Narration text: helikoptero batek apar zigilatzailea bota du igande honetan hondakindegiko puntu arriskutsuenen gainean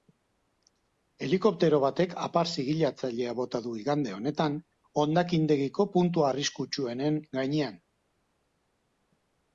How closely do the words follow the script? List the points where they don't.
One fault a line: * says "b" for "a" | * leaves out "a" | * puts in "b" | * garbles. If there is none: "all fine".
all fine